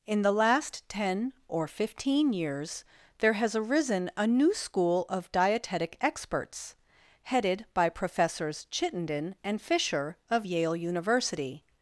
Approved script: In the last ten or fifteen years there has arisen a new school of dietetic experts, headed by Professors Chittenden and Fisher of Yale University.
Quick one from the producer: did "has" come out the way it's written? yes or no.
yes